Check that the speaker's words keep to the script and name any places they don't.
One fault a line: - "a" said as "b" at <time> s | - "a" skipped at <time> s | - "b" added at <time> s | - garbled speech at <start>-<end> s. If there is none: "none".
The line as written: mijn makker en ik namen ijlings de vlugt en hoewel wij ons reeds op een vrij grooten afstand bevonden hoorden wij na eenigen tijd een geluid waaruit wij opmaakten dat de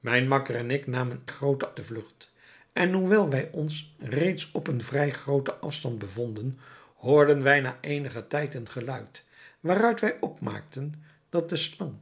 - "ijlings" said as "grooten" at 1.3 s